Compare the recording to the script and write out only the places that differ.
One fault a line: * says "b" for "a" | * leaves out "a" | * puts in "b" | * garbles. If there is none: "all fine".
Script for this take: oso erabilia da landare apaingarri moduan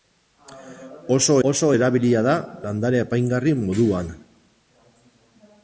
* puts in "oso"